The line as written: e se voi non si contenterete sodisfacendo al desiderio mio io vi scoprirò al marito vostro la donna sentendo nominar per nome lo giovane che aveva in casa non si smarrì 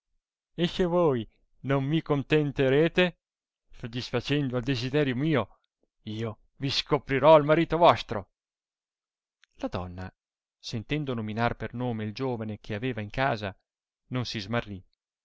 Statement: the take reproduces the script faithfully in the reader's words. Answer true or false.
false